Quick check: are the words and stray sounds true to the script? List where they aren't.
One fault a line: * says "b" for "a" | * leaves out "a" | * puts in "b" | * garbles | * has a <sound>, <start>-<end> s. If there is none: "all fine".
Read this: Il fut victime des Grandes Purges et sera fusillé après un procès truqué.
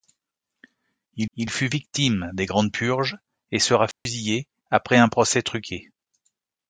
* puts in "il"
* has a dropout, 3.9-4.1 s